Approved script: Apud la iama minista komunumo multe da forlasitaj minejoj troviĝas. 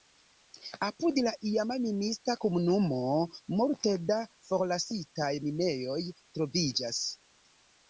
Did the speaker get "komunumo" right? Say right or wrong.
right